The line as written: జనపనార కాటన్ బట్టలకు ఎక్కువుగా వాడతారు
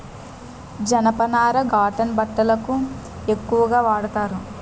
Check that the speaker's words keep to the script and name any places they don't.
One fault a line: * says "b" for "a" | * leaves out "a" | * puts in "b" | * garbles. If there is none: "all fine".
all fine